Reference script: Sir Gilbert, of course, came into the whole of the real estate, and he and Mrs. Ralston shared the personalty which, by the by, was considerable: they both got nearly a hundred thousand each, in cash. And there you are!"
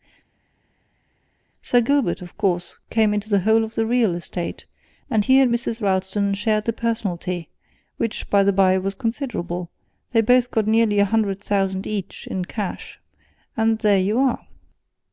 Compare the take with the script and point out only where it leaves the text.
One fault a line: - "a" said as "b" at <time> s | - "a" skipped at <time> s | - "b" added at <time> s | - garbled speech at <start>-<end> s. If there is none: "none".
none